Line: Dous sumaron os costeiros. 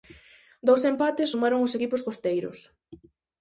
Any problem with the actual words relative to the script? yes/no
yes